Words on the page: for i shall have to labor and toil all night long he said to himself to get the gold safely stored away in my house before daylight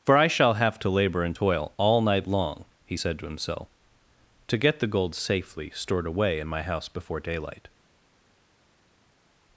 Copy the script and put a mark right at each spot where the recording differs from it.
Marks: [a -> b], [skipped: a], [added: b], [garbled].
for i shall have to labor and toil all night long he said to himself to get the gold safely stored away in my house before daylight